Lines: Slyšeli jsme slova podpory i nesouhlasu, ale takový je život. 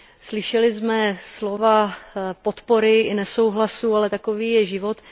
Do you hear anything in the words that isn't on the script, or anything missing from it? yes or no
no